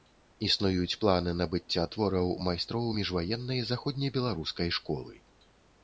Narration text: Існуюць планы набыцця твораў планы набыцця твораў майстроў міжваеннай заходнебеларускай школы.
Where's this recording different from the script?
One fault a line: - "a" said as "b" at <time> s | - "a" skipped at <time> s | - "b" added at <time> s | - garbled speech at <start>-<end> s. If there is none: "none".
- "планы набыцця твораў" skipped at 2.3 s